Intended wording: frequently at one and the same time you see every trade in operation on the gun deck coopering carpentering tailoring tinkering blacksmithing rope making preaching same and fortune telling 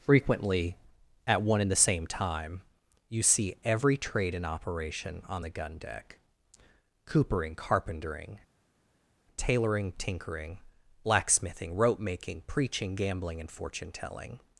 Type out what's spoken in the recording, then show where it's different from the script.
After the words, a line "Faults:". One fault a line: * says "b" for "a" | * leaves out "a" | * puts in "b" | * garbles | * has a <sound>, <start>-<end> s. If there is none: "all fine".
frequently at one and the same time you see every trade in operation on the gun deck coopering carpentering tailoring tinkering blacksmithing rope making preaching gambling and fortune telling
Faults:
* says "gambling" for "same"